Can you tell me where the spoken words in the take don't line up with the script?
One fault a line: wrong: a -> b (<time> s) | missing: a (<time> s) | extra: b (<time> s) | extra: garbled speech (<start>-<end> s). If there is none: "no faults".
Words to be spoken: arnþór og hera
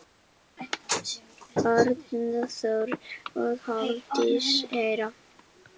extra: hafdís (3.7 s)